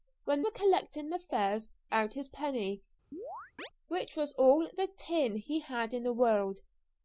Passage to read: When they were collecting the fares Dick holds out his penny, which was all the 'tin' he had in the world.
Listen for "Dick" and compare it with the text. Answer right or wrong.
wrong